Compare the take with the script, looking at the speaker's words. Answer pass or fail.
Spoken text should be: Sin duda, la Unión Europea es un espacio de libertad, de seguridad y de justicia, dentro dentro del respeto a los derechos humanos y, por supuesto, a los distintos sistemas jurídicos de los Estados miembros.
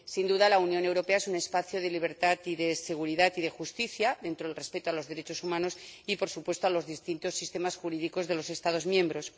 fail